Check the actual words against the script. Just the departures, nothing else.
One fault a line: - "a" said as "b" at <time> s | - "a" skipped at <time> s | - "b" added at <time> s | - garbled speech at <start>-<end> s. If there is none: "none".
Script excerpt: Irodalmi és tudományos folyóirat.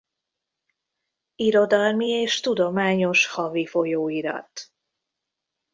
- "havi" added at 3.3 s